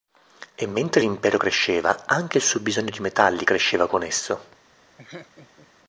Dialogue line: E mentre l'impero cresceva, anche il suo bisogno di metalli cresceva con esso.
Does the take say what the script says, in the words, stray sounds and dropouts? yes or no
no